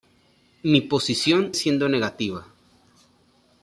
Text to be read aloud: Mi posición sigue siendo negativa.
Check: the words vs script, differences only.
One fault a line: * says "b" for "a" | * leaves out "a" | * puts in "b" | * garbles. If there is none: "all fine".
* leaves out "sigue"